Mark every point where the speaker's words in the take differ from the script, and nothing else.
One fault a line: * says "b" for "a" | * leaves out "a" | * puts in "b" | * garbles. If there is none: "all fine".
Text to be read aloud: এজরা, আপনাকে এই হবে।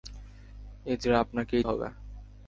all fine